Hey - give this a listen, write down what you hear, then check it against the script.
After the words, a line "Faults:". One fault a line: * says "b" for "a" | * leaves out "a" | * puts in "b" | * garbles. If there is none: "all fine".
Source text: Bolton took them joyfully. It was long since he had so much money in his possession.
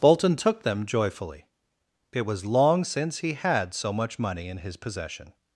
Bolton took them joyfully. It was long since he had so much money in his possession.
Faults:
all fine